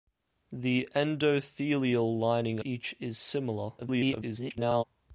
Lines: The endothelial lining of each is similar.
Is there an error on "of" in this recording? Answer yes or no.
yes